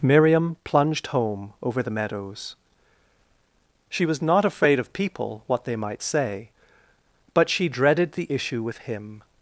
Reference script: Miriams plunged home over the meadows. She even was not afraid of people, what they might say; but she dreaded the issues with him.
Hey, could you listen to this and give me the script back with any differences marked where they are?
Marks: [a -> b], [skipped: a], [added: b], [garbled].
[Miriams -> Miriam] plunged home over the meadows. She [skipped: even] was not afraid of people, what they might say; but she dreaded the [issues -> issue] with him.